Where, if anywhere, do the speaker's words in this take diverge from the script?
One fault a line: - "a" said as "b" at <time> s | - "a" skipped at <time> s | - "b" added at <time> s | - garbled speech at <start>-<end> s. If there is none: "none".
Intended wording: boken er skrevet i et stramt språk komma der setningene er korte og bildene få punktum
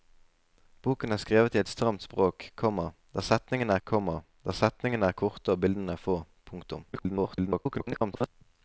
- "komma der setningene" added at 3.8 s
- garbled speech at 6.9-8.3 s